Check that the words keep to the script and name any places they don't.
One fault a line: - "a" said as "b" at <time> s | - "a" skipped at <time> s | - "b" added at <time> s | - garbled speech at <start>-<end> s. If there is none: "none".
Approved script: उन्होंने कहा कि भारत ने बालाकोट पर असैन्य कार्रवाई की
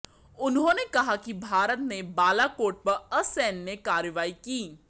none